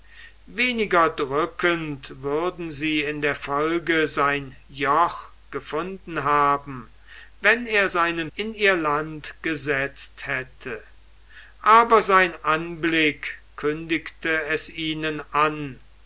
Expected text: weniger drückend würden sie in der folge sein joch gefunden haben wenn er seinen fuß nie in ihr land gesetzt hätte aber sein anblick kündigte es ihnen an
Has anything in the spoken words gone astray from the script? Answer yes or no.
yes